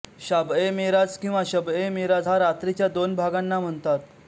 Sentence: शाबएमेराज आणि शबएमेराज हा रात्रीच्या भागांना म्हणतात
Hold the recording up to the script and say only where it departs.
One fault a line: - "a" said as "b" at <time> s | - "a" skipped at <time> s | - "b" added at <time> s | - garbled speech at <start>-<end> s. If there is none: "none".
- "आणि" said as "किंवा" at 1.2 s
- "दोन" added at 2.9 s